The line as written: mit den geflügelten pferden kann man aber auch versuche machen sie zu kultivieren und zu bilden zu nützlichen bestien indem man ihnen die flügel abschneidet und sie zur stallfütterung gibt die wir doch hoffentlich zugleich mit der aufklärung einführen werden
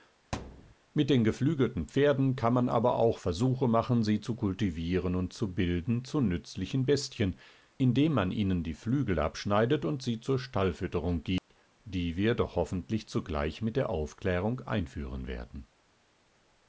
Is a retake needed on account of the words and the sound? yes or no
yes